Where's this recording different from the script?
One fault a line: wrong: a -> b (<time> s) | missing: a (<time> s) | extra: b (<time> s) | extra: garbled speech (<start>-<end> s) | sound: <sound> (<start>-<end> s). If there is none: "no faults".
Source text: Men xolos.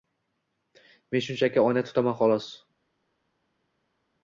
extra: shunchaki oyna tutaman (1.2 s)